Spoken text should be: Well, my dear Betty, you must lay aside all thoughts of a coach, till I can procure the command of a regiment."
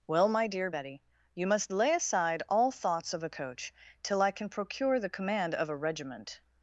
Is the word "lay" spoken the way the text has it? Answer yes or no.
yes